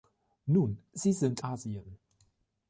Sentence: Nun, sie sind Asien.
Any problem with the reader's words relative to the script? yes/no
no